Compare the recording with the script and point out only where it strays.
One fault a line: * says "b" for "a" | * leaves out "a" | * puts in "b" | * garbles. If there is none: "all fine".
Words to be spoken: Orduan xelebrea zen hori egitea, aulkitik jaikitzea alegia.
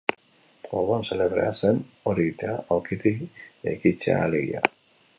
all fine